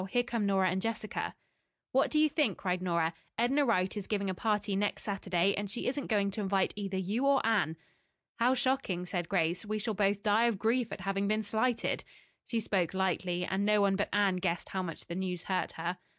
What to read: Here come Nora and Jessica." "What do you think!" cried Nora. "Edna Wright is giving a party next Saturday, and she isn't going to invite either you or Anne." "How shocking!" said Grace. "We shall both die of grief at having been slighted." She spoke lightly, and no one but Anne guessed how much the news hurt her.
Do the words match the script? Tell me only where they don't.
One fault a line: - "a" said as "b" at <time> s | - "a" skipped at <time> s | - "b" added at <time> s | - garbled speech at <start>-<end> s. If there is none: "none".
none